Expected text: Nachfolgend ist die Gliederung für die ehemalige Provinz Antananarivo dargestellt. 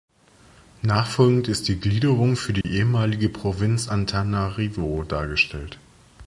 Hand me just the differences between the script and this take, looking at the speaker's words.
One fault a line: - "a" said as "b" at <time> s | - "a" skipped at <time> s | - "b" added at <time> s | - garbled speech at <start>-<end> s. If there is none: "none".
none